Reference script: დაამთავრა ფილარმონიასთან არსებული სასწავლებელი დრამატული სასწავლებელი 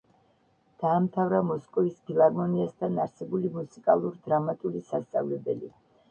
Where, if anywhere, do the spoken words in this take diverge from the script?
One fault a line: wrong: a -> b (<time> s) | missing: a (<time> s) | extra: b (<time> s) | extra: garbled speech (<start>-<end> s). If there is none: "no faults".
extra: მოსკოვის (1.5 s)
wrong: სასწავლებელი -> მუსიკალურ (3.6 s)